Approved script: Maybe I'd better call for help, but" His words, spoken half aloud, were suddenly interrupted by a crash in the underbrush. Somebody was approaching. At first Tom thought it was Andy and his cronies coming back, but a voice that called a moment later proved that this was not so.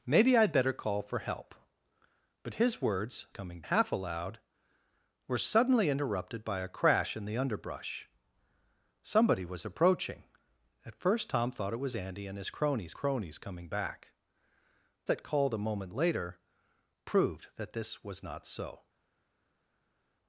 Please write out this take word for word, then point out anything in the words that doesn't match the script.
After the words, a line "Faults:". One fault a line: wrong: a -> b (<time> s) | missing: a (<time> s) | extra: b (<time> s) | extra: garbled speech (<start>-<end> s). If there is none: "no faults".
Maybe I'd better call for help, but" His words, coming half aloud, were suddenly interrupted by a crash in the underbrush. Somebody was approaching. At first Tom thought it was Andy and his cronies cronies coming back, that called a moment later proved that this was not so.
Faults:
wrong: spoken -> coming (3.3 s)
extra: cronies (12.9 s)
missing: but a voice (14.1 s)